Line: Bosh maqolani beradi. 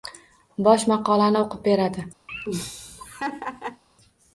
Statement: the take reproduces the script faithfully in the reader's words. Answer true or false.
false